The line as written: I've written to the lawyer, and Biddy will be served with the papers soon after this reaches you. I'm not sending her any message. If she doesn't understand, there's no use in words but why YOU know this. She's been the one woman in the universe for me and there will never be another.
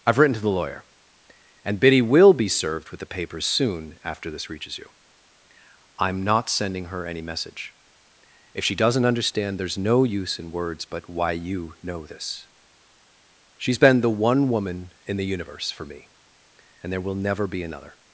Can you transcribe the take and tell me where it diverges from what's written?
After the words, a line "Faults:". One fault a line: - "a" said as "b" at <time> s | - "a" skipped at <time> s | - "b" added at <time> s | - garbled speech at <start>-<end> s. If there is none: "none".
I've written to the lawyer, and Biddy will be served with the papers soon after this reaches you. I'm not sending her any message. If she doesn't understand, there's no use in words but why YOU know this. She's been the one woman in the universe for me and there will never be another.
Faults:
none